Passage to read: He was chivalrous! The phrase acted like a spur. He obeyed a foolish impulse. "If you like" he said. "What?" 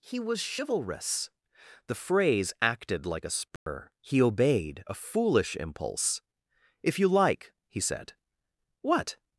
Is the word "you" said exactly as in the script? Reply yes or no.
yes